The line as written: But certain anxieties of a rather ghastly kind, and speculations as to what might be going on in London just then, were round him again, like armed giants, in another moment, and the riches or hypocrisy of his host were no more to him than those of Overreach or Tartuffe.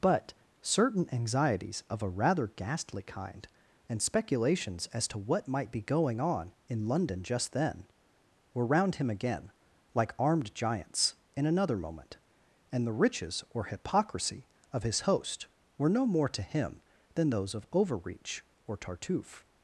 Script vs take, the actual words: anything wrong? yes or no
no